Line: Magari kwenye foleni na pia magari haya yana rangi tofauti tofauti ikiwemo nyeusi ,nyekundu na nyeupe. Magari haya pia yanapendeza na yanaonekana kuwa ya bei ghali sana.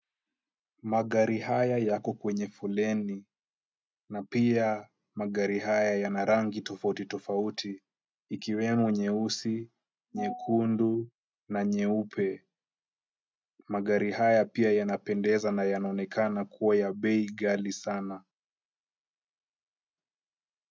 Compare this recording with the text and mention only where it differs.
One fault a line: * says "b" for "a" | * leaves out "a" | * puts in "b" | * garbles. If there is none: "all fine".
* puts in "haya yako"